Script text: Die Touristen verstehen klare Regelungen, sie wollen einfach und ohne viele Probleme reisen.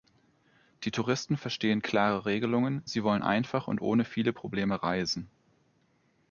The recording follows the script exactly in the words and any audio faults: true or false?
true